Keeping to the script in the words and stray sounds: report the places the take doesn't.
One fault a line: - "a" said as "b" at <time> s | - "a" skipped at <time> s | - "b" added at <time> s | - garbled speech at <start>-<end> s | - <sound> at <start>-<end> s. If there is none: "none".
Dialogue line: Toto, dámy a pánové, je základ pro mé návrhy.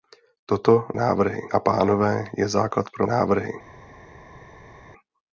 - "dámy" said as "návrhy" at 0.9 s
- "mé" skipped at 3.1 s